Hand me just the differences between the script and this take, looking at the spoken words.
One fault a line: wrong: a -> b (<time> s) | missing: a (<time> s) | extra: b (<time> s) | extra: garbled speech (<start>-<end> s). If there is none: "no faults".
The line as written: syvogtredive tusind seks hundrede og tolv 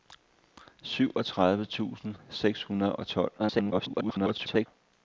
extra: garbled speech (3.4-4.7 s)